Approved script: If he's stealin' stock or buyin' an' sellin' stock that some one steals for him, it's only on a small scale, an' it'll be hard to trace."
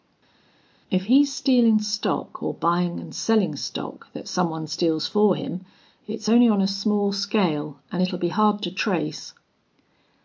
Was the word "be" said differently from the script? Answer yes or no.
no